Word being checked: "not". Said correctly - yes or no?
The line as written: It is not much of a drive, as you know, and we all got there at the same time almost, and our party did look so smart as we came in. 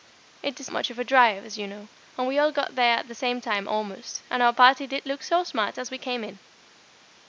no